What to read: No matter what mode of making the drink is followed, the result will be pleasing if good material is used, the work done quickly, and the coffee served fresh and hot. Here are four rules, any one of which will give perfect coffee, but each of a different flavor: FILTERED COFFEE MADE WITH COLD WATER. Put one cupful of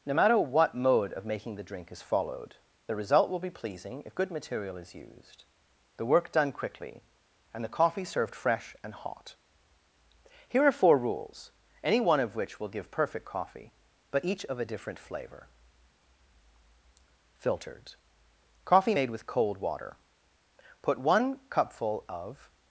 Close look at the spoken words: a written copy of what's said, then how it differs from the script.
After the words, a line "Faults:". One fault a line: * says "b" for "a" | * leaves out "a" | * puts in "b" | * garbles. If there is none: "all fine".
No matter what mode of making the drink is followed, the result will be pleasing if good material is used, the work done quickly, and the coffee served fresh and hot. Here are four rules, any one of which will give perfect coffee, but each of a different flavor: FILTERED COFFEE MADE WITH COLD WATER. Put one cupful of
Faults:
all fine